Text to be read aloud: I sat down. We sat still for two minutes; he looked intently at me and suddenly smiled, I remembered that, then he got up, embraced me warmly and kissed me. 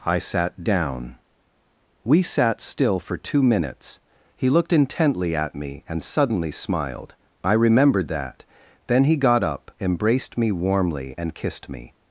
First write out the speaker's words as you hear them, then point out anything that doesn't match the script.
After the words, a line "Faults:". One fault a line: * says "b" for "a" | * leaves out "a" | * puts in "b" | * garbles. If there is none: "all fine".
I sat down. We sat still for two minutes; he looked intently at me and suddenly smiled, I remembered that, then he got up, embraced me warmly and kissed me.
Faults:
all fine